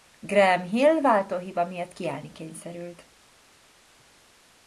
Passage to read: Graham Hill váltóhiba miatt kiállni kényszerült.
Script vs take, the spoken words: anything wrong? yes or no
no